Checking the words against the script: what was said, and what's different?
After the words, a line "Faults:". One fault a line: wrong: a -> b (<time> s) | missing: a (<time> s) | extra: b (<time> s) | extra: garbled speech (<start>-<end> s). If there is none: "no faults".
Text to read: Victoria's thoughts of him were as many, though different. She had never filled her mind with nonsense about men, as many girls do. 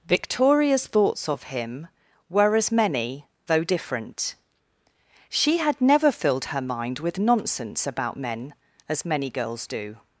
Victoria's thoughts of him were as many, though different. She had never filled her mind with nonsense about men, as many girls do.
Faults:
no faults